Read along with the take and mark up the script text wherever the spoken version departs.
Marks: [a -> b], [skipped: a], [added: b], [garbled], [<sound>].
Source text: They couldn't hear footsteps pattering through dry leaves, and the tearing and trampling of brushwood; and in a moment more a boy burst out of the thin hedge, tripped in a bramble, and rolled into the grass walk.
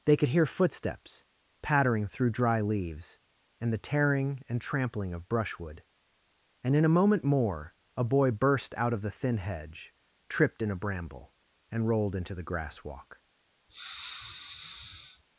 They [couldn't -> could] hear footsteps pattering through dry leaves, and the tearing and trampling of brushwood; and in a moment more a boy burst out of the thin hedge, tripped in a bramble, and rolled into the grass walk. [sniff]